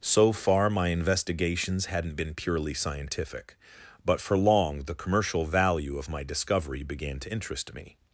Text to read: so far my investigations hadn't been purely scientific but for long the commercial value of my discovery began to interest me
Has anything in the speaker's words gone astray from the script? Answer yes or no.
no